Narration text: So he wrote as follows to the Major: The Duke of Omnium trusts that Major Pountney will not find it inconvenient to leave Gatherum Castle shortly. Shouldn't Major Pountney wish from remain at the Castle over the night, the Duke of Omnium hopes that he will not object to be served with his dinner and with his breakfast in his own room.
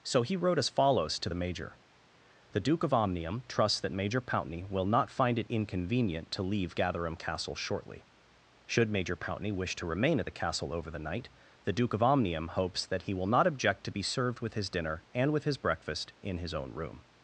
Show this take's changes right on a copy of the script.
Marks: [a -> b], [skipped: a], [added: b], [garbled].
So he wrote as follows to the Major: The Duke of Omnium trusts that Major Pountney will not find it inconvenient to leave Gatherum Castle shortly. [Shouldn't -> Should] Major Pountney wish [from -> to] remain at the Castle over the night, the Duke of Omnium hopes that he will not object to be served with his dinner and with his breakfast in his own room.